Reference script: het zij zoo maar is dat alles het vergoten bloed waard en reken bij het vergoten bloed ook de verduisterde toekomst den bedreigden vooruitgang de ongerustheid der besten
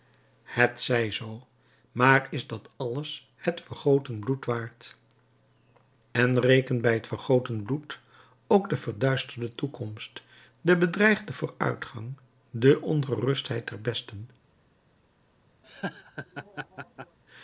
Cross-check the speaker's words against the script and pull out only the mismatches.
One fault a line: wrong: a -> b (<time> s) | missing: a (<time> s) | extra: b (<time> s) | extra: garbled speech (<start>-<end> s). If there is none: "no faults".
no faults